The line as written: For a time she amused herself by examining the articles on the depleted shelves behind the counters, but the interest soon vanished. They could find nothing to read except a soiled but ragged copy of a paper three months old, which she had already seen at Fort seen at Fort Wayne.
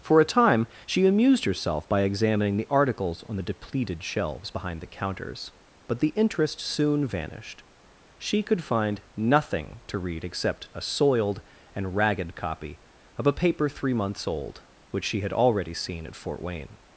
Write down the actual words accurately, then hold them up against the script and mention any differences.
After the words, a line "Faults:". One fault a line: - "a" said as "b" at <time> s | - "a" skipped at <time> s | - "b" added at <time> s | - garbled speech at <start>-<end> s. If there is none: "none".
For a time she amused herself by examining the articles on the depleted shelves behind the counters, but the interest soon vanished. She could find nothing to read except a soiled and ragged copy of a paper three months old, which she had already seen at Fort Wayne.
Faults:
- "They" said as "She" at 8.2 s
- "but" said as "and" at 11.7 s
- "seen at Fort" skipped at 16.4 s